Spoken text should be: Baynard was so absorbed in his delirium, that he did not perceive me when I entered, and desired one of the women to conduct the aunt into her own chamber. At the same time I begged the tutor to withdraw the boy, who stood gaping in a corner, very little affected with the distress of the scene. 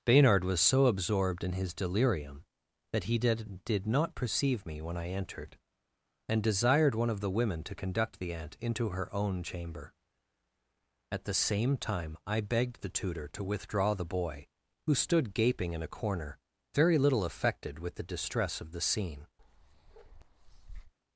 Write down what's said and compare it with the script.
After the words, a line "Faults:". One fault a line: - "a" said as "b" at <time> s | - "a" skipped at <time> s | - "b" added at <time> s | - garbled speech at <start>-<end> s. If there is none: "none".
Baynard was so absorbed in his delirium, that he did did not perceive me when I entered, and desired one of the women to conduct the aunt into her own chamber. At the same time I begged the tutor to withdraw the boy, who stood gaping in a corner, very little affected with the distress of the scene.
Faults:
- "did" added at 3.6 s